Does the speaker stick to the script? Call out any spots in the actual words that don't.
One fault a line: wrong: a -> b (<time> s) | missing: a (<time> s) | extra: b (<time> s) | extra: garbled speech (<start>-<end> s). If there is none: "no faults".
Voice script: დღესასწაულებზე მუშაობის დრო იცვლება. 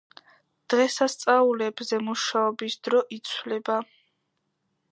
no faults